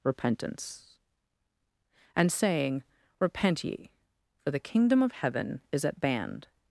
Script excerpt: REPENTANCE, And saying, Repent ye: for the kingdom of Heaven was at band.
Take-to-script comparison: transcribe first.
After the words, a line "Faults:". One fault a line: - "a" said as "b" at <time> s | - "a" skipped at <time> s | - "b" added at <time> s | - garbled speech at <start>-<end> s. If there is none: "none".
REPENTANCE, And saying, Repent ye: for the kingdom of Heaven is at band.
Faults:
- "was" said as "is" at 5.7 s